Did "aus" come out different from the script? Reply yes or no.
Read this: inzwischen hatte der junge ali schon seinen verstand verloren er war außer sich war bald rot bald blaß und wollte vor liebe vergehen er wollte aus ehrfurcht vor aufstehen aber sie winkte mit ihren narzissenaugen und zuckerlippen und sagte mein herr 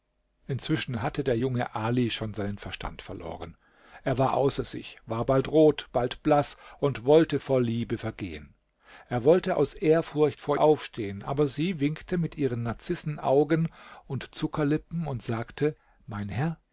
no